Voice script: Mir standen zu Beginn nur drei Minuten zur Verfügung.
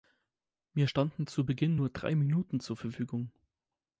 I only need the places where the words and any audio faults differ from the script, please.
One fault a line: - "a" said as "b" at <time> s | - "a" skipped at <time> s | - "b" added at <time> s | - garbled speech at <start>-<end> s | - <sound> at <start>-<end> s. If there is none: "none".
none